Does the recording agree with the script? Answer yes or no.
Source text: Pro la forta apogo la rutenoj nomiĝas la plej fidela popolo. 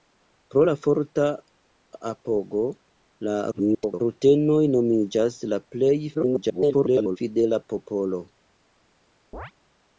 no